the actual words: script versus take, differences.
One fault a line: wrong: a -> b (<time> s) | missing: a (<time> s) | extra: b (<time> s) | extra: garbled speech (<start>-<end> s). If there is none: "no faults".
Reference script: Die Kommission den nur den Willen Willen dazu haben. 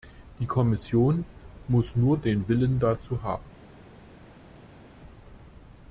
wrong: den -> muss (1.7 s)
missing: Willen (2.8 s)